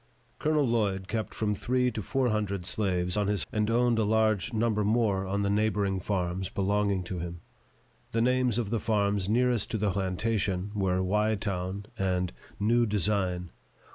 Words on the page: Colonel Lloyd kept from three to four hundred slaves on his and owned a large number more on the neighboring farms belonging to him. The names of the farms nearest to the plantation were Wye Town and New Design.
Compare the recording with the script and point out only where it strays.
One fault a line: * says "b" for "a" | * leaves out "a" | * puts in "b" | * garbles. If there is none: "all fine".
all fine